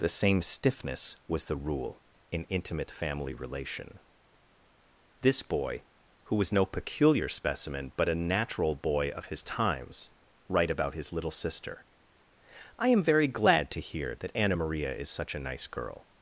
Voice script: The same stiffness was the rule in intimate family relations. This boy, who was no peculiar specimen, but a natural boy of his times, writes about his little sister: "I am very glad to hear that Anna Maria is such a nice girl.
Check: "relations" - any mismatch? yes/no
yes